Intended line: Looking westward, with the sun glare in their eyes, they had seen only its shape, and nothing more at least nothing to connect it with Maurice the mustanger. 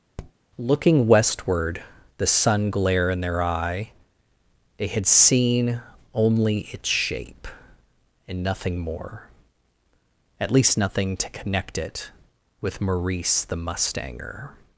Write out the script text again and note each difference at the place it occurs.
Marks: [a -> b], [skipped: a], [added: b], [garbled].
Looking westward, [skipped: with] the sun glare in their [eyes, -> eye] they had seen only its shape, and nothing more at least nothing to connect it with Maurice the mustanger.